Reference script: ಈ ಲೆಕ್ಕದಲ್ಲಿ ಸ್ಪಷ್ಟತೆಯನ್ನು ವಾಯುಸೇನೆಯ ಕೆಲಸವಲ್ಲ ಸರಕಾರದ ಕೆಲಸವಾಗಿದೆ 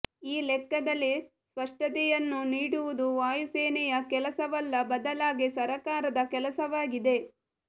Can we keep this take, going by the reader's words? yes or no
no